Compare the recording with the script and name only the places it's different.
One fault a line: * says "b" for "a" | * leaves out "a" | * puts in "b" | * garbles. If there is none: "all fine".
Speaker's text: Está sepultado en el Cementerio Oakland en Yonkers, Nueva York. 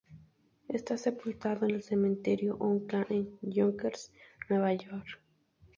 all fine